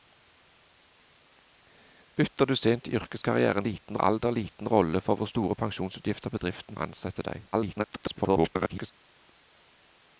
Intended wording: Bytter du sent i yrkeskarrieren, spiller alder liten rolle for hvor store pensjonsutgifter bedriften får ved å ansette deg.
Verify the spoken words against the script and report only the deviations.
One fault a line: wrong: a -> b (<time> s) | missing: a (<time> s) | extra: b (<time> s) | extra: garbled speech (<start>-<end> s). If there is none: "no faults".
wrong: spiller -> liten (3.6 s)
missing: får ved (6.8 s)
extra: garbled speech (7.5-8.9 s)